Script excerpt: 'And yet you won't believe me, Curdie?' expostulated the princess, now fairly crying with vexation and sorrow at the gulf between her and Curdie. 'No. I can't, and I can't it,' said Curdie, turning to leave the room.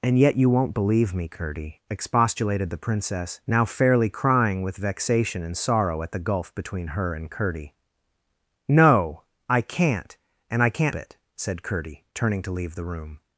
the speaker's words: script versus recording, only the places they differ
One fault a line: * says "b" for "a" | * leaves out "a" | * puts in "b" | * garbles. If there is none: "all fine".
all fine